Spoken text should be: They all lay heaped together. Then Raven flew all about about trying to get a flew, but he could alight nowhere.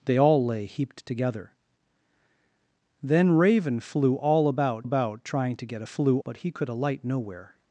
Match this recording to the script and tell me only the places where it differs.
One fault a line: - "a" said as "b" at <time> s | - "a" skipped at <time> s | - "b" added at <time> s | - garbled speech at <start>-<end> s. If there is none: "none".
none